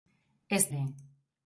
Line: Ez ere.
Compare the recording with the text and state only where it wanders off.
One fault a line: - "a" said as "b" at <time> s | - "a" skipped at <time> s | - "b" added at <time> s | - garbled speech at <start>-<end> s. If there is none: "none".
none